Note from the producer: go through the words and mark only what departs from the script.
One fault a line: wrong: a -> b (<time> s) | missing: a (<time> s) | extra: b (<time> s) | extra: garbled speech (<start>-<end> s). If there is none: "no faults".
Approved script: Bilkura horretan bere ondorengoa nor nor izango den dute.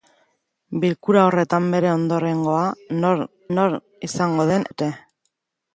no faults